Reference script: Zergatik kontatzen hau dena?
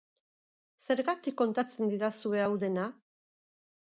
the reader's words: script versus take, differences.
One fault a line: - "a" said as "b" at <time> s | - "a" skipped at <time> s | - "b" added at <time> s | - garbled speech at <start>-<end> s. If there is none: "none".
- "didazue" added at 1.9 s